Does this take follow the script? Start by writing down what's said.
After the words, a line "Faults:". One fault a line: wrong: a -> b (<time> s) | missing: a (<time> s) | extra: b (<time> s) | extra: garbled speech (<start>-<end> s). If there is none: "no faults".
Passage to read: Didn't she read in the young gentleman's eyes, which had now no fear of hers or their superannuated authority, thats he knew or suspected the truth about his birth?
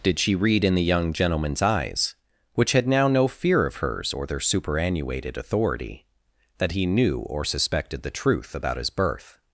Did she read in the young gentleman's eyes, which had now no fear of hers or their superannuated authority, that he knew or suspected the truth about his birth?
Faults:
wrong: Didn't -> Did (0.0 s)
wrong: thats -> that (6.6 s)